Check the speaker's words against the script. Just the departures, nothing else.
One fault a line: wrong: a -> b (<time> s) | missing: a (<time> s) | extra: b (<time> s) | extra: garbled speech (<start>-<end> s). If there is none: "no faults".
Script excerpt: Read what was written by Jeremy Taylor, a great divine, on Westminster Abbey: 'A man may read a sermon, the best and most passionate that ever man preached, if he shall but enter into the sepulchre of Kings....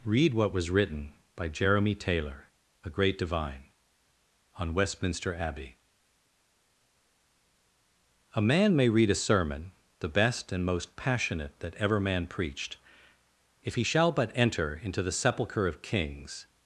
no faults